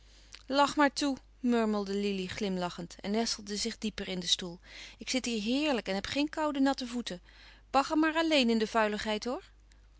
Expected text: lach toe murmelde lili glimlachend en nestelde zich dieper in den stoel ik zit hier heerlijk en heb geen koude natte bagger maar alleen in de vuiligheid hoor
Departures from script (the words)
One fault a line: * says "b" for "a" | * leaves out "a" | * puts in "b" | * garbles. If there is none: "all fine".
* puts in "maar"
* puts in "voeten"